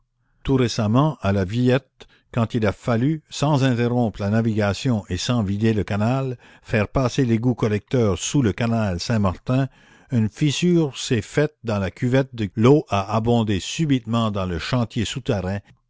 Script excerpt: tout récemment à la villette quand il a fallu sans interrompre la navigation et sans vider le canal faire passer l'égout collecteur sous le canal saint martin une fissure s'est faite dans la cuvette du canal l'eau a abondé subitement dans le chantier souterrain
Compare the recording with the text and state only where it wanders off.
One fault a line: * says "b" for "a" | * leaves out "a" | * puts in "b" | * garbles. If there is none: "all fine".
* leaves out "canal"